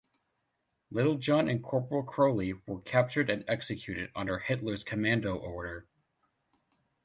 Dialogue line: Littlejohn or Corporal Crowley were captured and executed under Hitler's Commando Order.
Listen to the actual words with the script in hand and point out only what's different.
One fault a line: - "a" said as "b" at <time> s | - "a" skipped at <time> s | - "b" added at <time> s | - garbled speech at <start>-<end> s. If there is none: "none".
- "or" said as "and" at 1.5 s